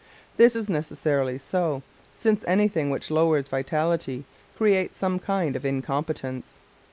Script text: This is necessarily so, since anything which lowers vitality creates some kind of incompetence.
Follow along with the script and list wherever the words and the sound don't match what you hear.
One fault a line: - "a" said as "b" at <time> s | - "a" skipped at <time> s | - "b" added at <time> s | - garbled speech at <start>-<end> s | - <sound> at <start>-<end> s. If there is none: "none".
none